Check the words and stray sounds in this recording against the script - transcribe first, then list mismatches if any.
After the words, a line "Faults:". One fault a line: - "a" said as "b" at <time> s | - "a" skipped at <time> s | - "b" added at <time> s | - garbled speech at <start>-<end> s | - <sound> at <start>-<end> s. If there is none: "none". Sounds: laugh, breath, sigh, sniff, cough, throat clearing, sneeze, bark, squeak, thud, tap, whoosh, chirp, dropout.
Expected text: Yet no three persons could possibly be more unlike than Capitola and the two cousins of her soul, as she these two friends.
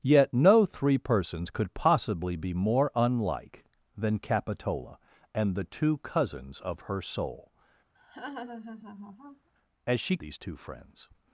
Yet no three persons could possibly be more unlike than Capitola and the two cousins of her soul, as she these two friends.
Faults:
- laugh at 8.0-9.5 s